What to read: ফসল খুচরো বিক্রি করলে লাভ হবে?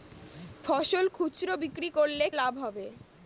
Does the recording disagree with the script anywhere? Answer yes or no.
no